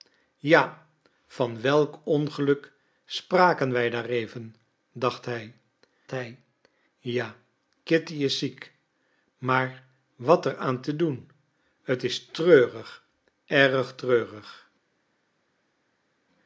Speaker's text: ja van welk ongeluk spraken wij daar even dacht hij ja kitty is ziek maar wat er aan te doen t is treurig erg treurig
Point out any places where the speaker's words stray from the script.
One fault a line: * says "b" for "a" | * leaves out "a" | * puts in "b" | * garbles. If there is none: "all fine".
* puts in "hij"